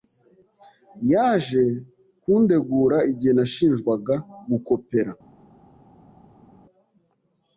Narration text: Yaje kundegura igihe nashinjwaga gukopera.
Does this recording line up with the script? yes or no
yes